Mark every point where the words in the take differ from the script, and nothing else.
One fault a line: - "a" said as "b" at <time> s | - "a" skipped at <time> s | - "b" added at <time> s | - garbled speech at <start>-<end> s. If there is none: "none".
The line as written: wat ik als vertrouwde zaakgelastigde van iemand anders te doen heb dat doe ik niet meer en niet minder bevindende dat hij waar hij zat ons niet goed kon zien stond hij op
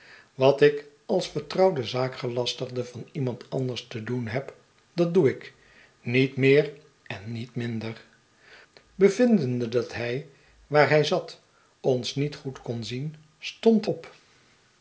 - "hij" skipped at 13.9 s